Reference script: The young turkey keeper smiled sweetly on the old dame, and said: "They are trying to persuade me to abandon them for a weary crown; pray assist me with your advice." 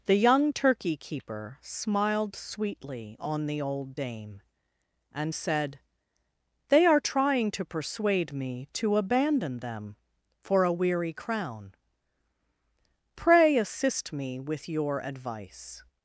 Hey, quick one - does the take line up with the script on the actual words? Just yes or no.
yes